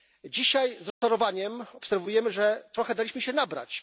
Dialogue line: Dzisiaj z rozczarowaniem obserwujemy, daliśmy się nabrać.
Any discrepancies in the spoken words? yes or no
yes